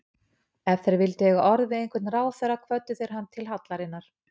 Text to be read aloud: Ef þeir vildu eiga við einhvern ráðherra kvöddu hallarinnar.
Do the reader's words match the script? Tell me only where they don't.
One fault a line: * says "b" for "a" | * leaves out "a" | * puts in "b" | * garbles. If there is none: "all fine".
* puts in "orð"
* puts in "þeir hann til"